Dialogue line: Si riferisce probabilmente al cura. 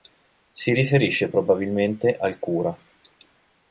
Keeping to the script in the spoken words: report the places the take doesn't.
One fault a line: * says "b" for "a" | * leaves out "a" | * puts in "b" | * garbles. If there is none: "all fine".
all fine